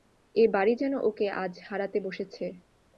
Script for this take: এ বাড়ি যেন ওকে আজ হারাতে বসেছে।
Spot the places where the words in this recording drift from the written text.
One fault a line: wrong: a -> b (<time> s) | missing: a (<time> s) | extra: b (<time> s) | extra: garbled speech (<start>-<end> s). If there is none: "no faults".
no faults